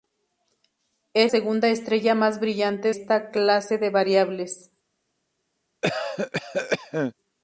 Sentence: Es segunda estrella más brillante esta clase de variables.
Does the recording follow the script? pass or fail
pass